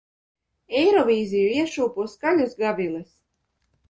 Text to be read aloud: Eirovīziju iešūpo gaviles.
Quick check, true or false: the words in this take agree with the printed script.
false